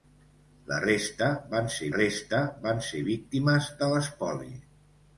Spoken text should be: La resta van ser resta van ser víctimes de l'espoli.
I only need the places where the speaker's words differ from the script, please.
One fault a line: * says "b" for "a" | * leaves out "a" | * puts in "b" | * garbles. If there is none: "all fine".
all fine